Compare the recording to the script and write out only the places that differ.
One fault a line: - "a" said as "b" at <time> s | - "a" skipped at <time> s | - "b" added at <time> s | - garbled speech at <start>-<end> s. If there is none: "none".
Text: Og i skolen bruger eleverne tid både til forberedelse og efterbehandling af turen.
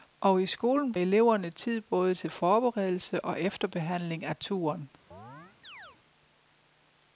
- "bruger" skipped at 0.9 s